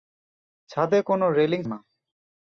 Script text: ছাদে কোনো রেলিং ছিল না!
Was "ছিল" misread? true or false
true